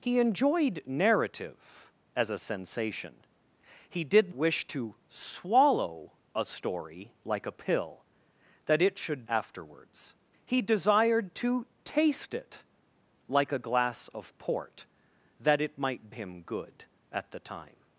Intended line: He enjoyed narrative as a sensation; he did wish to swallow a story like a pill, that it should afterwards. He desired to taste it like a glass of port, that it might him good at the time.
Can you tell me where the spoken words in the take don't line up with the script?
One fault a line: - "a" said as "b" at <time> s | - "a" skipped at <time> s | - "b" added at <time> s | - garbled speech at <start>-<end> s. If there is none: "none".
none